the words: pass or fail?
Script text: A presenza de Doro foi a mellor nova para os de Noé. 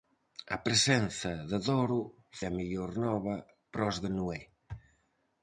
fail